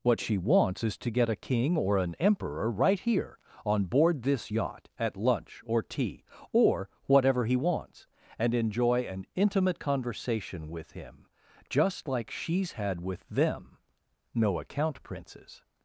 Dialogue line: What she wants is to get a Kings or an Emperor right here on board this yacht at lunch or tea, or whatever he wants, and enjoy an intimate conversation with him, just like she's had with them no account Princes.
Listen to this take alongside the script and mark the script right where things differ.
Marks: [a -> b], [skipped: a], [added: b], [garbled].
What she wants is to get a [Kings -> King] or an Emperor right here on board this yacht at lunch or tea, or whatever he wants, and enjoy an intimate conversation with him, just like she's had with them no account Princes.